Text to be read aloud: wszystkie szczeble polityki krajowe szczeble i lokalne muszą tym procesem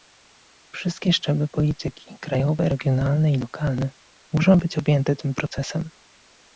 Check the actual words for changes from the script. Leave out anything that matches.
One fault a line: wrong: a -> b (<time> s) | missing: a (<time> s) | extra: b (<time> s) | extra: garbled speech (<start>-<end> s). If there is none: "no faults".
wrong: szczeble -> regionalne (2.7 s)
extra: być objęte (4.6 s)